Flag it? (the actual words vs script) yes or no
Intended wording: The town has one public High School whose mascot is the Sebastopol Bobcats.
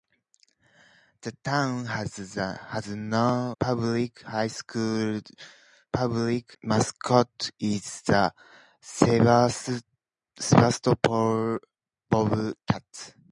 yes